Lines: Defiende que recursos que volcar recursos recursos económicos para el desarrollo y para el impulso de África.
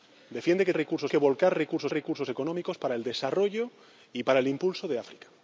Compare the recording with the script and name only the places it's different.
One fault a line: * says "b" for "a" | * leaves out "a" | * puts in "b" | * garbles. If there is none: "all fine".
all fine